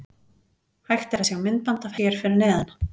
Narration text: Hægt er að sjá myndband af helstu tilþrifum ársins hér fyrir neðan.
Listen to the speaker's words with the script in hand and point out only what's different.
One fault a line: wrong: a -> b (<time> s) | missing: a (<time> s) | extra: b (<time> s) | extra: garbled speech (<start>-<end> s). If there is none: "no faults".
missing: helstu tilþrifum ársins (2.0 s)